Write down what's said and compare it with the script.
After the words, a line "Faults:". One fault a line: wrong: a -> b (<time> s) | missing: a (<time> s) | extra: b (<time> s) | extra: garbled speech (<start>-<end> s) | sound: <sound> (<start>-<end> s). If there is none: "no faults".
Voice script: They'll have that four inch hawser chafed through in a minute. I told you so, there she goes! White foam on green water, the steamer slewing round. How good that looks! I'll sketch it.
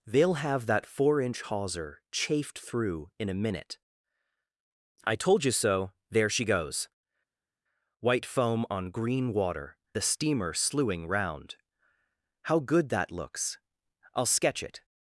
They'll have that four inch hawser chafed through in a minute. I told you so, there she goes! White foam on green water, the steamer slewing round. How good that looks! I'll sketch it.
Faults:
no faults